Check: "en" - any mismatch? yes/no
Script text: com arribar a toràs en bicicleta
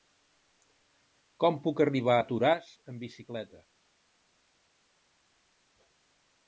yes